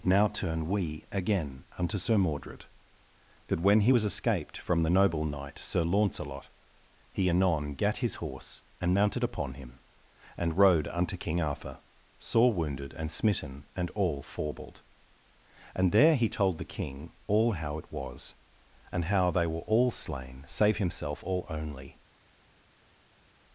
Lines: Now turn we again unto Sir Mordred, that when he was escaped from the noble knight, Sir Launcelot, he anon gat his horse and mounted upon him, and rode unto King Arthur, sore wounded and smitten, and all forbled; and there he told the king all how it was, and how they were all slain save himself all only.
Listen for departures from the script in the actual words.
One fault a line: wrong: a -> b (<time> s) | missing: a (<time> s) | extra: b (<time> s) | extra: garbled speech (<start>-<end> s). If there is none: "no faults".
no faults